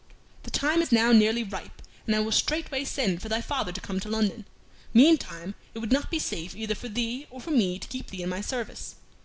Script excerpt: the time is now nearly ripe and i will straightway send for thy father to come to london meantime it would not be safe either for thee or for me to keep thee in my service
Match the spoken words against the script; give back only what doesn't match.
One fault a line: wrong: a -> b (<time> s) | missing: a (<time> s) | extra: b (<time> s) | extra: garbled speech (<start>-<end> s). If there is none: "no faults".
no faults